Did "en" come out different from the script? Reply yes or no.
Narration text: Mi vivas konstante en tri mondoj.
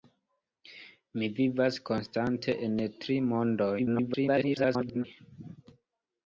no